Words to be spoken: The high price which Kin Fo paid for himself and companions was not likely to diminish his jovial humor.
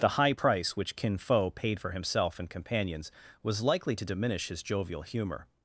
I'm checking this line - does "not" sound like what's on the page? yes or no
no